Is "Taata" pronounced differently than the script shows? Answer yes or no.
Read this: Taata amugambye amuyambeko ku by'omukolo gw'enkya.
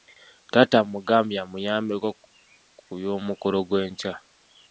no